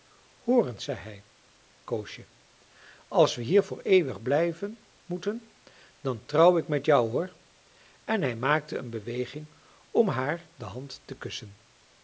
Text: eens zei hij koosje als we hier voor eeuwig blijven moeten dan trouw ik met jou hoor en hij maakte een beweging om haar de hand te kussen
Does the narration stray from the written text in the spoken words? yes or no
no